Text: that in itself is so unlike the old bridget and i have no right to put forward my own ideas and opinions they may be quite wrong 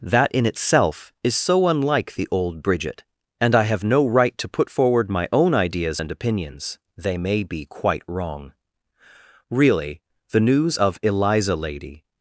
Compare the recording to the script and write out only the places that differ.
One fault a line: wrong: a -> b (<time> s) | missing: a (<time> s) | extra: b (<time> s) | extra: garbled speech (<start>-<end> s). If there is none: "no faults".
extra: really the news of eliza lady (9.5 s)